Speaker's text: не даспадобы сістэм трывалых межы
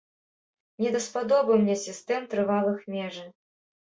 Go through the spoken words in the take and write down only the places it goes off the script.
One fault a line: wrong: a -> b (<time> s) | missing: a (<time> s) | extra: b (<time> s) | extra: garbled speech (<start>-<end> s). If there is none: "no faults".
extra: мне (1.6 s)